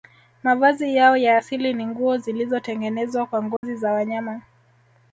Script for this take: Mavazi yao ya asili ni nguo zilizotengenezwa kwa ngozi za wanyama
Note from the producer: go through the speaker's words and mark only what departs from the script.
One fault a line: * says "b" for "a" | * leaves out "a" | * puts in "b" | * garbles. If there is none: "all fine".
all fine